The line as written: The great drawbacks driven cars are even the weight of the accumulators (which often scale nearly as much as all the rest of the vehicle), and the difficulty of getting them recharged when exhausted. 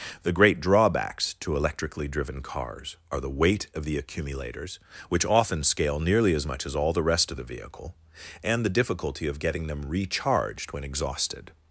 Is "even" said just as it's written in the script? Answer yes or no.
no